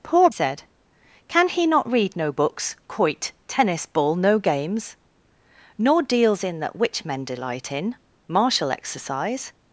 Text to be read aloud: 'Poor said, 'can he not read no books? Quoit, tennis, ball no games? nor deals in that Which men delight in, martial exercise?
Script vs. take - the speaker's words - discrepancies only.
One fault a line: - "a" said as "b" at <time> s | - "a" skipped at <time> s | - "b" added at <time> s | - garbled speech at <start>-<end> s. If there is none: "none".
none